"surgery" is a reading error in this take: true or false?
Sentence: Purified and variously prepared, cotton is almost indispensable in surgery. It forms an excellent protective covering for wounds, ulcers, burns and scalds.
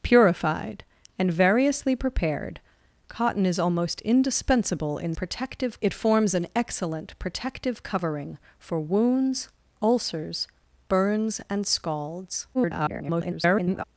true